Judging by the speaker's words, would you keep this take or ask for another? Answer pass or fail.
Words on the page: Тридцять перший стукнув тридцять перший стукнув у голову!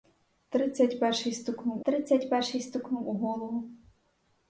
pass